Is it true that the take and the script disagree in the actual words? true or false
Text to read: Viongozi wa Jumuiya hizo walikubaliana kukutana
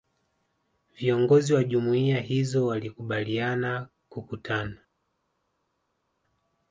false